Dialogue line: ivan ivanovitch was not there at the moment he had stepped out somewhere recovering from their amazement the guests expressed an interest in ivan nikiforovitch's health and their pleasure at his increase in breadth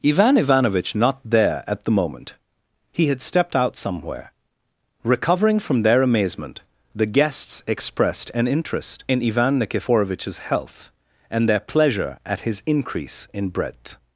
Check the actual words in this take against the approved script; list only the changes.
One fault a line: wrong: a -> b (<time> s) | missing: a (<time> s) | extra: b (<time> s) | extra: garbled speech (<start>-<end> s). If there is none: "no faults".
missing: was (0.9 s)